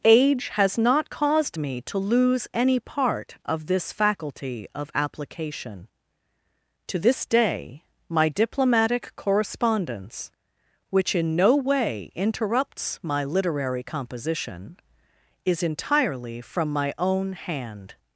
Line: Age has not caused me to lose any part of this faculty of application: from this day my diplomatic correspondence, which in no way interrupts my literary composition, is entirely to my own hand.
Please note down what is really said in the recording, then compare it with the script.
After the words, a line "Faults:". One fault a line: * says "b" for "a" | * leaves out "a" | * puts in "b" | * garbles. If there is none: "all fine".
Age has not caused me to lose any part of this faculty of application: to this day my diplomatic correspondence, which in no way interrupts my literary composition, is entirely from my own hand.
Faults:
* says "to" for "from"
* says "from" for "to"